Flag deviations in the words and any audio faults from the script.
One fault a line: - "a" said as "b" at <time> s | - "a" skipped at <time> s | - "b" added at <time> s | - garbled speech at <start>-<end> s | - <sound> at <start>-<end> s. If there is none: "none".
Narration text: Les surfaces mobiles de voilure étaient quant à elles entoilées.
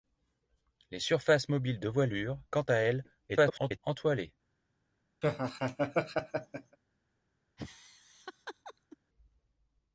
- "étaient" skipped at 2.4 s
- garbled speech at 3.3-3.8 s
- laugh at 5.2-6.8 s
- laugh at 7.6-9.0 s